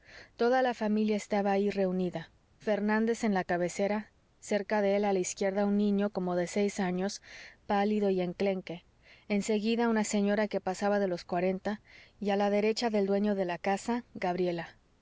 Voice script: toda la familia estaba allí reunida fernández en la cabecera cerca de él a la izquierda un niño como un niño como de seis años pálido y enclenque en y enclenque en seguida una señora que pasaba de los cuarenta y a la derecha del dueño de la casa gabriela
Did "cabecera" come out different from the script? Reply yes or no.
no